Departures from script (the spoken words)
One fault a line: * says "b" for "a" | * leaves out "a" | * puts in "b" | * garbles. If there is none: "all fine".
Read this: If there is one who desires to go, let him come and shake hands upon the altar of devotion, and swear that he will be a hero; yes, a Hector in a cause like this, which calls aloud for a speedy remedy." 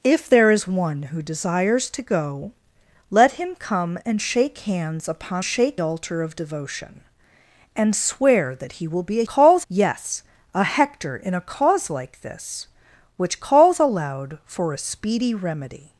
* says "shake" for "the"
* says "calls" for "hero"